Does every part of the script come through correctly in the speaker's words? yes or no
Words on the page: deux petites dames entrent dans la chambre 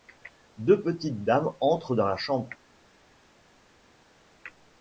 yes